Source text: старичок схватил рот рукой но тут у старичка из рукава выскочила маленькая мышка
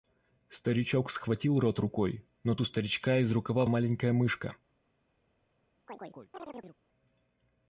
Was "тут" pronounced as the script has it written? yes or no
no